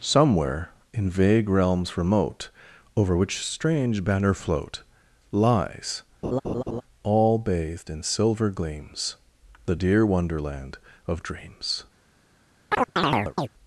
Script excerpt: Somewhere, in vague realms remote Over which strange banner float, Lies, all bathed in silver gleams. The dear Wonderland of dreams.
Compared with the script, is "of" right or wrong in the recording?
right